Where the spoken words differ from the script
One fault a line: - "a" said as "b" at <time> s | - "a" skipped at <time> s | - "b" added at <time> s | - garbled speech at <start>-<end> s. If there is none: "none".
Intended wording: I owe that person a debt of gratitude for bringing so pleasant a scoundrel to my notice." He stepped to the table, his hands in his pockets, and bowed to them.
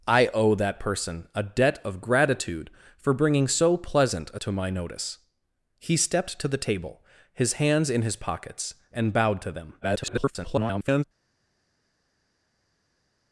- "scoundrel" skipped at 4.4 s
- garbled speech at 9.8-11.0 s